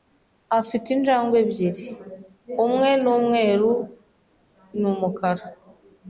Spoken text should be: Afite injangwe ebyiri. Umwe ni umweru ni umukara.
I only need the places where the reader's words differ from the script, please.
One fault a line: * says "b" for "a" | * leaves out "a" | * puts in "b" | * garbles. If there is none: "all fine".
all fine